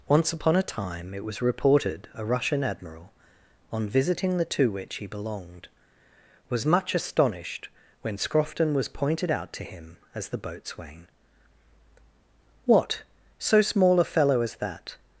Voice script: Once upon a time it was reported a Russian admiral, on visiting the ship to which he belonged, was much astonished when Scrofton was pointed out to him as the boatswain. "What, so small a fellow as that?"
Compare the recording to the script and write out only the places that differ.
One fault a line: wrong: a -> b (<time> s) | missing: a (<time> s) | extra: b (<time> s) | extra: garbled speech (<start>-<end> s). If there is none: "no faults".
missing: ship (4.5 s)